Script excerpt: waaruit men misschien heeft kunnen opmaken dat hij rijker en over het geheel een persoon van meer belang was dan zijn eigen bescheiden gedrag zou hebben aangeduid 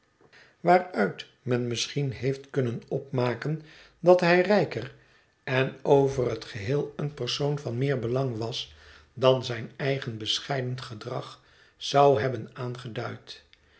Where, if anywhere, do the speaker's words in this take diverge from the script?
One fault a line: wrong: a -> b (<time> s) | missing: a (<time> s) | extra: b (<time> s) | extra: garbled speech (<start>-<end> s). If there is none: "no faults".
no faults